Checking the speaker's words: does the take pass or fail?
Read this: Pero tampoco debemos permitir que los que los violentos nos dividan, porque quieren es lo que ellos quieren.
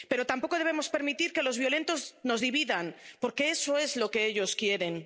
fail